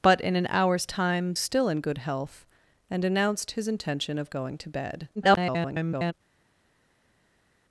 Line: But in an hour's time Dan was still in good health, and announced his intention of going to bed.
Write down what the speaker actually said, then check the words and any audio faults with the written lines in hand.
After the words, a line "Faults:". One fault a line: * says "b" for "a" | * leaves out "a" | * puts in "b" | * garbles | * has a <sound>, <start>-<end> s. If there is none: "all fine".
But in an hour's time Still in good health, and announced his intention of going to bed. [garbled]
Faults:
* leaves out "Dan was"
* garbles